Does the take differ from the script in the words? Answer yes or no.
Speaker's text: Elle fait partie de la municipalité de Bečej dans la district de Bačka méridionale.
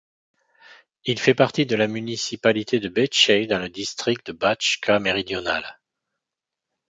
yes